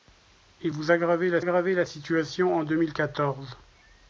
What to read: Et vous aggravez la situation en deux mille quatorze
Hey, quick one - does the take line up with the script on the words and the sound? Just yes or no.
no